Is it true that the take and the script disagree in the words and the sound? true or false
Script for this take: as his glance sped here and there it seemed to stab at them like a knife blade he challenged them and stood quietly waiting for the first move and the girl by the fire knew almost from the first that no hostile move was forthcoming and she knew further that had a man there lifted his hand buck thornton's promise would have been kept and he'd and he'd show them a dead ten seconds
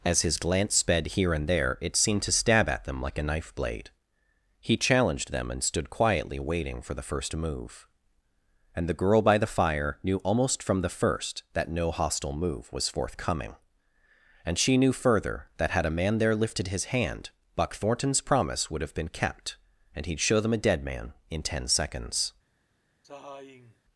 true